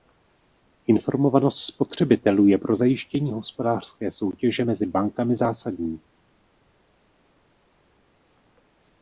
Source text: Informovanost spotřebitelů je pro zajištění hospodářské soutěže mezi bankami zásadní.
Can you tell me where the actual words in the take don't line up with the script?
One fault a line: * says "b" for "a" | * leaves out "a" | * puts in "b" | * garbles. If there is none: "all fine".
all fine